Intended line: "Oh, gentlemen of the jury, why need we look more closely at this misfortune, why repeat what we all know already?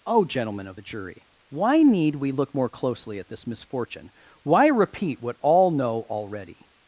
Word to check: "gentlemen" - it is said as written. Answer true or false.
true